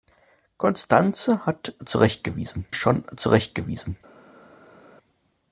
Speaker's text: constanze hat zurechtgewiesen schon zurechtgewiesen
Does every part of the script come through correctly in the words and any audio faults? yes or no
yes